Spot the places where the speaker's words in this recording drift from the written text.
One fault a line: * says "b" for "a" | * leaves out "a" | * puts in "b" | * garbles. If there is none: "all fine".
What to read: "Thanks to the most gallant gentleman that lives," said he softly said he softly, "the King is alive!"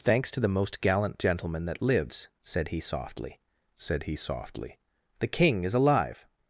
all fine